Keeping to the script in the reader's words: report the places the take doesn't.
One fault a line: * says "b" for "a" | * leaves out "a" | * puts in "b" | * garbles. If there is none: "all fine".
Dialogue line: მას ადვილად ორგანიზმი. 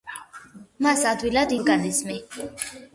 all fine